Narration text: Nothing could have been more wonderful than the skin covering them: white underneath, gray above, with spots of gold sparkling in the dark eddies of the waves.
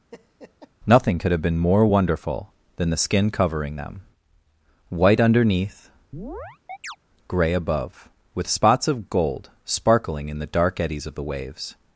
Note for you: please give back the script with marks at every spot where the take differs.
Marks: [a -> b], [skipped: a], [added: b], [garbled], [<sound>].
[laugh] Nothing could have been more wonderful than the skin covering them: white underneath, [chirp] gray above, with spots of gold sparkling in the dark eddies of the waves.